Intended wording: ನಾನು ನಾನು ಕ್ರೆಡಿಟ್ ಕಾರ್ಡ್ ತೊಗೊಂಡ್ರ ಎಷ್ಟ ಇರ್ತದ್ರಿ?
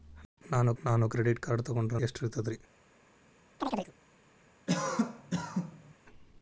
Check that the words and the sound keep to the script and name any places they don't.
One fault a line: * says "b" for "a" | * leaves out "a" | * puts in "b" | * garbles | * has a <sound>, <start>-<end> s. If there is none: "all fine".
* has a chirp, 3.6-3.9 s
* has a cough, 4.7-5.9 s